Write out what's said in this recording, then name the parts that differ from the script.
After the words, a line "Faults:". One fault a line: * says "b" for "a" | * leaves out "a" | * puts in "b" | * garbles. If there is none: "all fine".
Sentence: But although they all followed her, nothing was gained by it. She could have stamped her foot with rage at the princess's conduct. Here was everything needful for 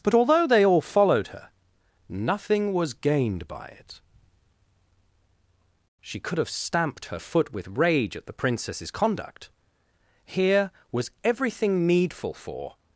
But although they all followed her, nothing was gained by it. She could have stamped her foot with rage at the princess's conduct. Here was everything needful for
Faults:
all fine